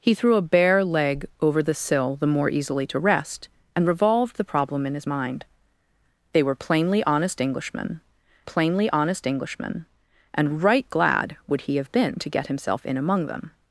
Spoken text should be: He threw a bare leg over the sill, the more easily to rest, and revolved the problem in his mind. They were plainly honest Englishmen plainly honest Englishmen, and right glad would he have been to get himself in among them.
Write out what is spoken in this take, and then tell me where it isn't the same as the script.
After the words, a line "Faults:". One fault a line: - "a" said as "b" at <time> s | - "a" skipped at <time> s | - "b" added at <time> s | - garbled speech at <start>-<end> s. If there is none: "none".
He threw a bare leg over the sill, the more easily to rest, and revolved the problem in his mind. They were plainly honest Englishmen plainly honest Englishmen, and right glad would he have been to get himself in among them.
Faults:
none